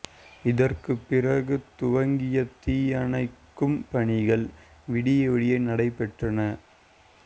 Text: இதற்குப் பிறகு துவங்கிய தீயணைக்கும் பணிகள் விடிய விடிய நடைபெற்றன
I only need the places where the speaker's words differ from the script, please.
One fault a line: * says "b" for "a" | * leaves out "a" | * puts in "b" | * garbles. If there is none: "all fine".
all fine